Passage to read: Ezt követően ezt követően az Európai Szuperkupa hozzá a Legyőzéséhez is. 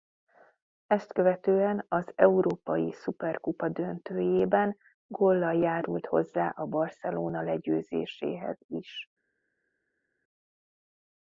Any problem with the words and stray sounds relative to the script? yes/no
yes